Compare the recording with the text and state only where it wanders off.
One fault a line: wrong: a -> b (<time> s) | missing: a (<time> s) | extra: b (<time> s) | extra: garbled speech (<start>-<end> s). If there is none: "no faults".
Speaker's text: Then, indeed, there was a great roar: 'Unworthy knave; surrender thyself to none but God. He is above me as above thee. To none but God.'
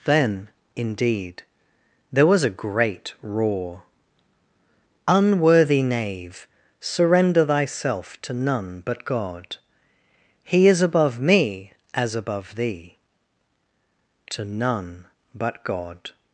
no faults